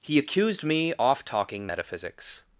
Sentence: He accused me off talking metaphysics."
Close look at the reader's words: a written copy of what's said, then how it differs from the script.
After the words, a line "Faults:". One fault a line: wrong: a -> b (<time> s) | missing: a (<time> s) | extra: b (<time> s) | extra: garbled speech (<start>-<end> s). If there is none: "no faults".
He accused me off talking metaphysics."
Faults:
no faults